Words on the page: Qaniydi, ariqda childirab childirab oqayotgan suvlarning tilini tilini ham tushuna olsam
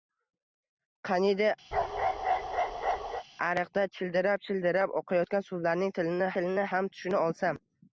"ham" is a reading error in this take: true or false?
false